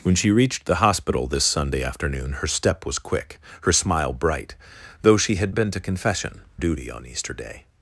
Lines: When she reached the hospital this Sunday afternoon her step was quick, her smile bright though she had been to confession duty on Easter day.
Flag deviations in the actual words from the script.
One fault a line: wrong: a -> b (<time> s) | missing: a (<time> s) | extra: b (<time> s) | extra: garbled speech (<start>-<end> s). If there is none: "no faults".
no faults